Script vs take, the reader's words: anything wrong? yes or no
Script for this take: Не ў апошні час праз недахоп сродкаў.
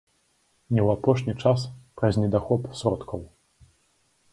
no